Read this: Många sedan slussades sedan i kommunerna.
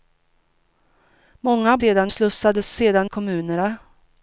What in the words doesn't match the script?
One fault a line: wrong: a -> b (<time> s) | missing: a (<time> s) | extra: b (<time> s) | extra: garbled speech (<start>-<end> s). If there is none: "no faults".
no faults